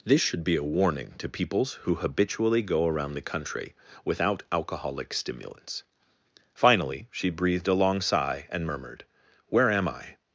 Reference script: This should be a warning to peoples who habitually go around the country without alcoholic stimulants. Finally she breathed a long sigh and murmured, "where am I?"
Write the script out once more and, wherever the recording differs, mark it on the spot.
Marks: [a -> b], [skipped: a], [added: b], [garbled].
This should be a warning to peoples who habitually go around the country without alcoholic stimulants. Finally she breathed a long sigh and murmured, "where am I?"